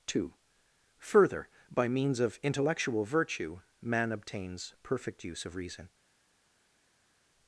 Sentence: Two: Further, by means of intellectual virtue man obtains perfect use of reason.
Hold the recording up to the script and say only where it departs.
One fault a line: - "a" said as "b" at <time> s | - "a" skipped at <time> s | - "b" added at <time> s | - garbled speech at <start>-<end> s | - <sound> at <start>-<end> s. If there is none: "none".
none